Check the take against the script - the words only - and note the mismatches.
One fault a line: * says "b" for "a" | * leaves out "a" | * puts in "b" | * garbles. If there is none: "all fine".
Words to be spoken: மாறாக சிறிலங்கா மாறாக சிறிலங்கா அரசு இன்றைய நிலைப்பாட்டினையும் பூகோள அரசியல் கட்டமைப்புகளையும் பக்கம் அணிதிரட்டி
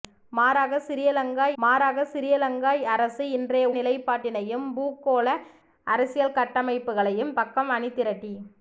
all fine